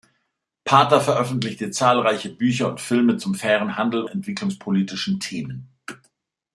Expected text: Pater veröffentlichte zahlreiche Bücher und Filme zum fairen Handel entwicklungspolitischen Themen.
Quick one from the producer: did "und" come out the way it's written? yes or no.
yes